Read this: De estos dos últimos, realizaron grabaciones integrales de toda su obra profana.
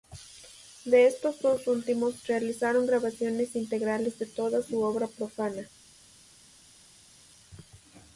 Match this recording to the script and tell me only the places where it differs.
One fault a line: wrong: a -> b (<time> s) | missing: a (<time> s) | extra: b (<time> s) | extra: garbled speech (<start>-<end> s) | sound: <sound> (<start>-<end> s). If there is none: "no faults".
no faults